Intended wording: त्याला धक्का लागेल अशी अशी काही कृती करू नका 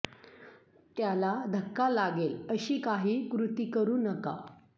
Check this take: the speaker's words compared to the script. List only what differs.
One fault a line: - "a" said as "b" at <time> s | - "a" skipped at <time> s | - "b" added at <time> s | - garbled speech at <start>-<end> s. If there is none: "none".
- "अशी" skipped at 2.8 s